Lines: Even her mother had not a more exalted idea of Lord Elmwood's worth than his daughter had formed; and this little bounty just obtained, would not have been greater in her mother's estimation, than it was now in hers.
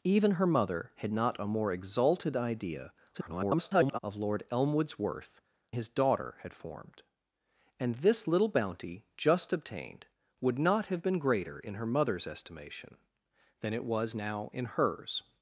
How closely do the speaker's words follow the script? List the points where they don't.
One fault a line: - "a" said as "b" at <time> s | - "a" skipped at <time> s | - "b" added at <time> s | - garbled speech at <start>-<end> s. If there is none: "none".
- garbled speech at 3.1-4.0 s
- "than" skipped at 5.4 s